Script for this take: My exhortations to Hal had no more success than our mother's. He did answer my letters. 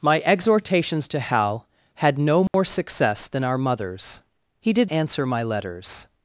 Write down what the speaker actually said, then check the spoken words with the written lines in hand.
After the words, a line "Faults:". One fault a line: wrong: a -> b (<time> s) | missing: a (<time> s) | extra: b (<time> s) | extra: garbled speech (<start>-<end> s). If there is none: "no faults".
My exhortations to Hal had no more success than our mother's. He did answer my letters.
Faults:
no faults